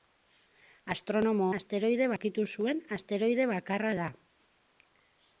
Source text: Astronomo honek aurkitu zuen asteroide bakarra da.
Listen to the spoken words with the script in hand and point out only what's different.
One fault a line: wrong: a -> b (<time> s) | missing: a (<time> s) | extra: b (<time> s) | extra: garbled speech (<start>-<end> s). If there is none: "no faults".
wrong: honek -> asteroide (1.6 s)